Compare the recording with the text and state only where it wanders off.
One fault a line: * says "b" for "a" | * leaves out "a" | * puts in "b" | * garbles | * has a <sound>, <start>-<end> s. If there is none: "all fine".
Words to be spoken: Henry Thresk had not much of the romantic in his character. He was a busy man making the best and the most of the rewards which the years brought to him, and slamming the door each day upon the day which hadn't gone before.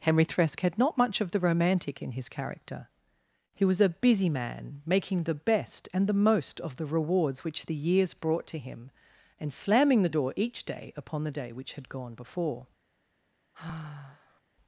* says "had" for "hadn't"
* has a sigh, 13.5-14.4 s